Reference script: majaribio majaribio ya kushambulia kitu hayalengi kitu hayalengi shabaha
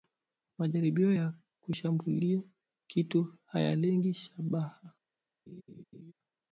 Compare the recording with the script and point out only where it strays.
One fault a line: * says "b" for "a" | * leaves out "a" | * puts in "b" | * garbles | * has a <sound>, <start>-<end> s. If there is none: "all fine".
* leaves out "majaribio"
* leaves out "kitu hayalengi"
* has a laugh, 5.5-6.1 s